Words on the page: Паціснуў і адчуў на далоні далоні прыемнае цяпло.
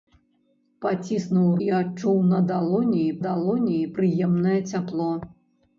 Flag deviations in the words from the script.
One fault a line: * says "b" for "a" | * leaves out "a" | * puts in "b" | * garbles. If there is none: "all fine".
all fine